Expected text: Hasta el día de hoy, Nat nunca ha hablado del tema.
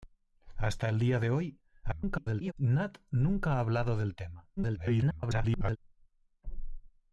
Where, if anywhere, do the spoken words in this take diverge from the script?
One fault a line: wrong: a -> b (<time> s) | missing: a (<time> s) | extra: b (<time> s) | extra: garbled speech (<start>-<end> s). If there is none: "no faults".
extra: garbled speech (1.8-2.5 s)
extra: garbled speech (4.6-5.8 s)